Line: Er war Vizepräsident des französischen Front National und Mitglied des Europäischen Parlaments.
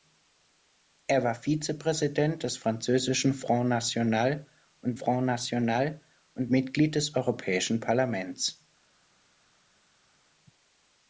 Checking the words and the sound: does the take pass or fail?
fail